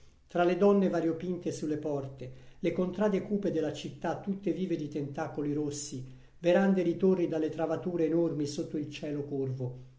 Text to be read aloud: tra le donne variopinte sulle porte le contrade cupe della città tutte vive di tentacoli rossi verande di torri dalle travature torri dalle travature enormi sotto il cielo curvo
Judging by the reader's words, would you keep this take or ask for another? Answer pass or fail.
fail